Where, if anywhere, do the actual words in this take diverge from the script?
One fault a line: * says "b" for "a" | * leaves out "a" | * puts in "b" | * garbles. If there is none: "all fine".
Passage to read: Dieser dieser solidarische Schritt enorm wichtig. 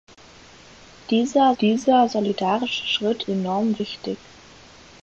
all fine